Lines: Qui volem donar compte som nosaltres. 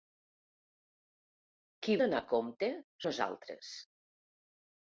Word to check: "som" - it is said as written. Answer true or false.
false